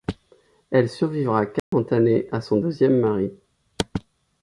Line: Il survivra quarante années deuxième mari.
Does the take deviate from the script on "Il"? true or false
true